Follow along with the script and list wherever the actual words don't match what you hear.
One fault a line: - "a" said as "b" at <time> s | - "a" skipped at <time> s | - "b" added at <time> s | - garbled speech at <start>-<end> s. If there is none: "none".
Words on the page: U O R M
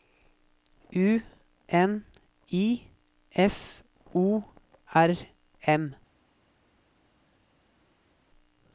- "N I F" added at 1.7 s